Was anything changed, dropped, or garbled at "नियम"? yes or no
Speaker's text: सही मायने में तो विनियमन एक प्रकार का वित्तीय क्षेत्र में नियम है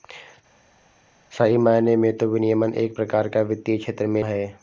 yes